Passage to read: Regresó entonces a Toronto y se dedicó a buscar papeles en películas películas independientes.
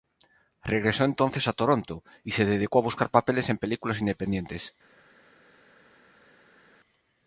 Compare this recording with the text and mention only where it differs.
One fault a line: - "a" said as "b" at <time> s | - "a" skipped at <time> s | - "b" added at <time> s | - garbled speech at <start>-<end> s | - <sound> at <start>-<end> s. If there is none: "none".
- "películas" skipped at 4.0 s